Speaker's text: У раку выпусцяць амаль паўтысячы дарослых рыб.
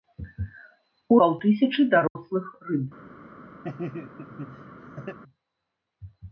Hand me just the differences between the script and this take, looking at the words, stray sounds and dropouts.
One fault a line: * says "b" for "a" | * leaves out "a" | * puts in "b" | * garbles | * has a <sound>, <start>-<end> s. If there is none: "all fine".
* leaves out "раку выпусцяць амаль"
* has a dropout, 2.1-2.2 s
* has a laugh, 3.6-5.2 s